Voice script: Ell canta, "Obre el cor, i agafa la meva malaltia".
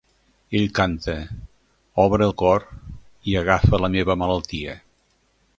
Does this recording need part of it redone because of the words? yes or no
no